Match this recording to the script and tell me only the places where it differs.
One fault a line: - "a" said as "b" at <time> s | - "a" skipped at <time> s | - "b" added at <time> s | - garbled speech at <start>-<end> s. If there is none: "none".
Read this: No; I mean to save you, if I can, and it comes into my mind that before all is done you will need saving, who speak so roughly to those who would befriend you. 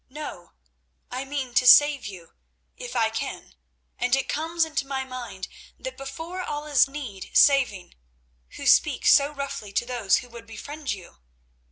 - "done you will" skipped at 6.8 s